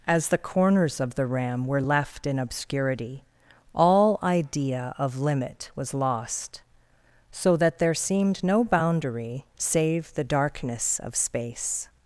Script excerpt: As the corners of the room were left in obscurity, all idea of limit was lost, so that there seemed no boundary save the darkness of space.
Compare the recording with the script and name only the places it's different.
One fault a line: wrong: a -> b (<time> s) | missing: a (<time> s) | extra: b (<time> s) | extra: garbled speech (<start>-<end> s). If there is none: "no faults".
wrong: room -> ram (1.3 s)